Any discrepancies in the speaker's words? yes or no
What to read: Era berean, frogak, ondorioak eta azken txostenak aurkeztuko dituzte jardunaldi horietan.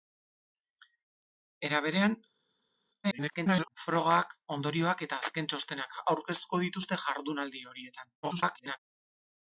yes